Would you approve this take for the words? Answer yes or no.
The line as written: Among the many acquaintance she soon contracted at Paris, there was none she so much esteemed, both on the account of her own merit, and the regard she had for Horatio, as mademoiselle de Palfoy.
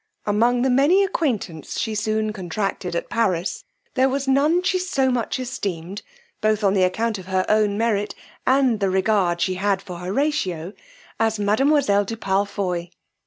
yes